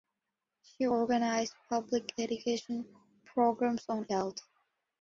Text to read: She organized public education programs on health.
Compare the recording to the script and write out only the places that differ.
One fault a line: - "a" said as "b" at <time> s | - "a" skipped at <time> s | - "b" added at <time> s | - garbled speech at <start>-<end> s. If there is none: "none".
none